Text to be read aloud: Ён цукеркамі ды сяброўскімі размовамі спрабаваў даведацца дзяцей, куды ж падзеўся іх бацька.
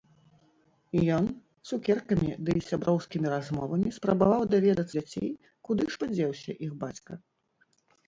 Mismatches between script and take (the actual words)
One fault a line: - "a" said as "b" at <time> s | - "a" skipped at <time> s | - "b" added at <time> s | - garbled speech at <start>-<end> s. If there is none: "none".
none